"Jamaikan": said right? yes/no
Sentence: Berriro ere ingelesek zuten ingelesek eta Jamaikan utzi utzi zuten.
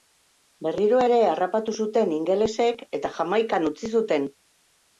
yes